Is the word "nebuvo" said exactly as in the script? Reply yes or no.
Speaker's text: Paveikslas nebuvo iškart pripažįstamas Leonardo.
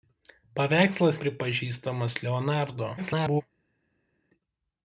no